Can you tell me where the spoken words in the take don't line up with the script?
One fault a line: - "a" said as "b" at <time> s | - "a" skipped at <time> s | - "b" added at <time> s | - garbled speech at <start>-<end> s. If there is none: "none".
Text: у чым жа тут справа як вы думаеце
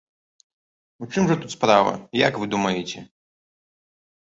none